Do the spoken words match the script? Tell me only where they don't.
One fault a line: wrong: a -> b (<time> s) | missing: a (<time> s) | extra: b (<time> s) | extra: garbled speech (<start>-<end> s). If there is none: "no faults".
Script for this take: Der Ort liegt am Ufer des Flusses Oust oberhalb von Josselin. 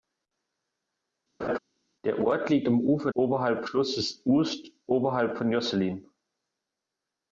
wrong: des -> oberhalb (3.1 s)